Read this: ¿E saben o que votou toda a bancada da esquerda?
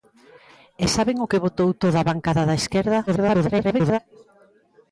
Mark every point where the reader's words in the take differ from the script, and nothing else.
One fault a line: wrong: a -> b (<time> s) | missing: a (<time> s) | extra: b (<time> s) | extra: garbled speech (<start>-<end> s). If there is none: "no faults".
extra: garbled speech (3.1-4.0 s)